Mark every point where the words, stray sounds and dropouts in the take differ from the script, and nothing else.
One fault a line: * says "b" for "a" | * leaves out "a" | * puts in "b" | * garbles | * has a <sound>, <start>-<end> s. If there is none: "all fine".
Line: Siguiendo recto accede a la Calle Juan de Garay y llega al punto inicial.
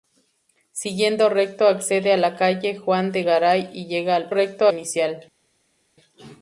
* says "recto" for "punto"